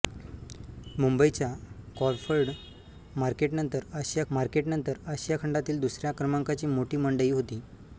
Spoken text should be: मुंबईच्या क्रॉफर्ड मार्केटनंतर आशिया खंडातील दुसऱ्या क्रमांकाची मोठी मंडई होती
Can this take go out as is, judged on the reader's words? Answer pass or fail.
fail